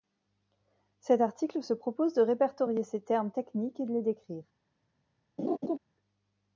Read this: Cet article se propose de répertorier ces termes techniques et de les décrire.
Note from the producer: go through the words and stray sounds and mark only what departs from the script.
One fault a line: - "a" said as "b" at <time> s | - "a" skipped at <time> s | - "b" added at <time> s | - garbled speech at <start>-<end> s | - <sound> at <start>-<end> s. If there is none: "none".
- laugh at 5.4-5.8 s